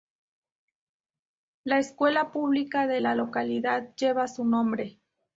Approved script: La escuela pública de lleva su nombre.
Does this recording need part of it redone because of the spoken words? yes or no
yes